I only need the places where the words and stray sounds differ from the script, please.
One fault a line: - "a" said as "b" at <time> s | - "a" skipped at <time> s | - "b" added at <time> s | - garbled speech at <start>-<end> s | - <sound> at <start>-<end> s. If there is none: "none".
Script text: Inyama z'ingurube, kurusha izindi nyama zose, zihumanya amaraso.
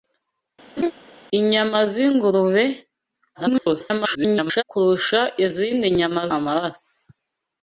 - laugh at 0.8-0.9 s
- garbled speech at 3.3-4.6 s
- "zose zihumanya" skipped at 6.2 s